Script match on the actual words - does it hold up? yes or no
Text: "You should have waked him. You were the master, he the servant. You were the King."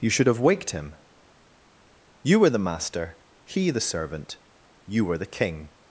yes